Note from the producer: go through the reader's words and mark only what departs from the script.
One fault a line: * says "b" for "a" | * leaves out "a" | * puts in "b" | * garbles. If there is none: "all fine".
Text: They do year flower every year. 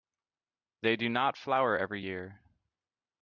* says "not" for "year"